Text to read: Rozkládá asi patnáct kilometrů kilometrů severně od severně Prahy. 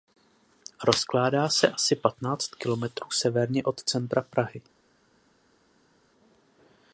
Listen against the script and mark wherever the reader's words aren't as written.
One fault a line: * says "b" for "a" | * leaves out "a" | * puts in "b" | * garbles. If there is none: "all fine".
* puts in "se"
* leaves out "kilometrů"
* says "centra" for "severně"